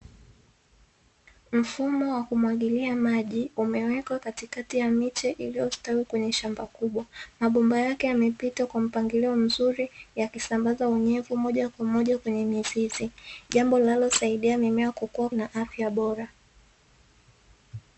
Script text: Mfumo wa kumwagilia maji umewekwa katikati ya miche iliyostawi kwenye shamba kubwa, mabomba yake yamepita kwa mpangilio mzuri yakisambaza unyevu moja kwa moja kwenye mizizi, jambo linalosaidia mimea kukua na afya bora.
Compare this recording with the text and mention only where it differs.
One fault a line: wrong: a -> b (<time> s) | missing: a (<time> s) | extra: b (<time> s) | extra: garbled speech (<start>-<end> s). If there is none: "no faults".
no faults